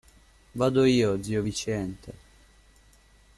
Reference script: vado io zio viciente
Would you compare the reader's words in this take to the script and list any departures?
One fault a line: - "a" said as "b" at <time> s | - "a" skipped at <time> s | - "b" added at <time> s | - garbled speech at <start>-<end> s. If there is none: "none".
none